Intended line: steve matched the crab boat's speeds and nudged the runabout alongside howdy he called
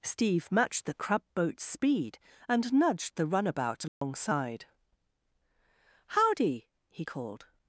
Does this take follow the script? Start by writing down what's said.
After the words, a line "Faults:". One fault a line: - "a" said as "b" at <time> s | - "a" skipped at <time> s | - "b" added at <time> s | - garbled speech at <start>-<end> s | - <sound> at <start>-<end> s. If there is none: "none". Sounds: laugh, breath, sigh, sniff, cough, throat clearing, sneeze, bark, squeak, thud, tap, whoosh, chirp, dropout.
steve matched the crab boat's speed and nudged the runabout alongside howdy he called
Faults:
- "speeds" said as "speed" at 1.6 s
- dropout at 3.9-4.0 s